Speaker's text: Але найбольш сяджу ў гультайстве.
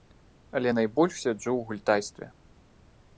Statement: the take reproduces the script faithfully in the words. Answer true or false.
true